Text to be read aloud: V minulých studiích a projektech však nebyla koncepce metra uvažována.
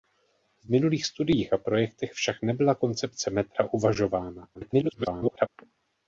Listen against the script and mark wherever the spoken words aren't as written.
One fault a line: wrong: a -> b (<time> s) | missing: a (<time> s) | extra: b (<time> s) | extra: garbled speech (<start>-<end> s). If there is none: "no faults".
extra: garbled speech (4.5-5.5 s)